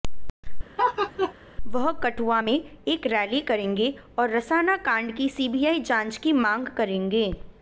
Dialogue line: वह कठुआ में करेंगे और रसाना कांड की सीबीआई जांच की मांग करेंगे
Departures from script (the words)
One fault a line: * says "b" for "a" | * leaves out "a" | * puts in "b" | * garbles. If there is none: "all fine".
* puts in "एक रैली"